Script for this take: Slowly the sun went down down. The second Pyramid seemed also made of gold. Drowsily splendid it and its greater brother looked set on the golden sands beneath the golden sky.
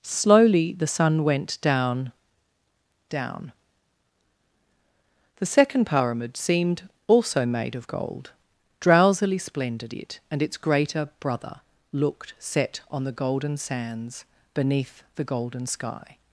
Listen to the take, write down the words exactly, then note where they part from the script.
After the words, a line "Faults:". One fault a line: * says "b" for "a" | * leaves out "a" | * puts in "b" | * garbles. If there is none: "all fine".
Slowly the sun went down down. The second Pyramid seemed also made of gold. Drowsily splendid it and its greater brother looked set on the golden sands beneath the golden sky.
Faults:
all fine